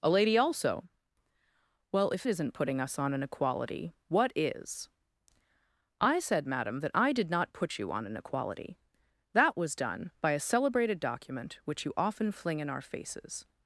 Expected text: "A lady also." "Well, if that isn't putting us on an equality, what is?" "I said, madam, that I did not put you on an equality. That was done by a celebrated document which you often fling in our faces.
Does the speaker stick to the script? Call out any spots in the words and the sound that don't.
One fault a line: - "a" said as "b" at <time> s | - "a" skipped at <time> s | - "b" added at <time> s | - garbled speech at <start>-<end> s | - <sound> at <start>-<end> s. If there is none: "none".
- "that" skipped at 2.2 s